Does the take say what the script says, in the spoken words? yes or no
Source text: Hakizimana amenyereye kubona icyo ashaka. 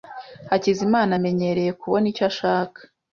yes